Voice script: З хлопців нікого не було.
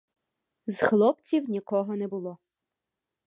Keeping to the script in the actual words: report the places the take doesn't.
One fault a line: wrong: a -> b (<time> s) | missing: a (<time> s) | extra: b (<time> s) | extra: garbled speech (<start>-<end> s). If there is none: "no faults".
no faults